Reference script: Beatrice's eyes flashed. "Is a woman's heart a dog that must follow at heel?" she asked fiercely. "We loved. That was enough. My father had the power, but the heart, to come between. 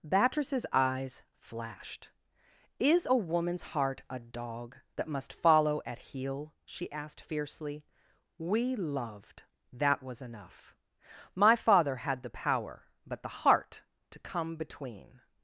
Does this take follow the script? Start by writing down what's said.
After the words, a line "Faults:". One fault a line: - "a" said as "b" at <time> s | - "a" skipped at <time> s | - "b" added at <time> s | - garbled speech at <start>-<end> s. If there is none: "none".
Beatrice's eyes flashed. "Is a woman's heart a dog that must follow at heel?" she asked fiercely. "We loved. That was enough. My father had the power, but the heart, to come between.
Faults:
none